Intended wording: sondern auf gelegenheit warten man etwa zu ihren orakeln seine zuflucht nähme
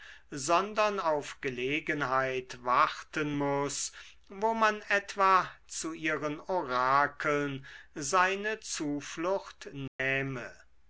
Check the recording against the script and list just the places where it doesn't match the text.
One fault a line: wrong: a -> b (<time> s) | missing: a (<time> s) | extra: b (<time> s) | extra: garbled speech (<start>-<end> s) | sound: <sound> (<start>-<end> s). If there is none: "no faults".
extra: muß wo (3.4 s)
sound: dropout (9.9-10.0 s)